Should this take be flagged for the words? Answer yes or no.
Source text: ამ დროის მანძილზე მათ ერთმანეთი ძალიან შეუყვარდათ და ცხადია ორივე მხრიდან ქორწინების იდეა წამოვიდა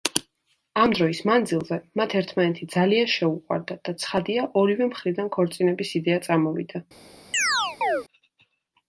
no